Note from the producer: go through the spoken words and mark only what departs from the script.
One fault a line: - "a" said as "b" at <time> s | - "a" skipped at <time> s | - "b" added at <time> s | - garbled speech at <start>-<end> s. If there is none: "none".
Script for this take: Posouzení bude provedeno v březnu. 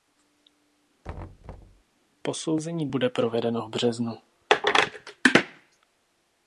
none